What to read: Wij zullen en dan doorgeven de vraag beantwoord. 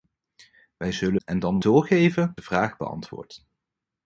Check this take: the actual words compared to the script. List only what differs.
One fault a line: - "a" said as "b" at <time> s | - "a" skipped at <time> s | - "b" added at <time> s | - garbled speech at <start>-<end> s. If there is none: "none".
none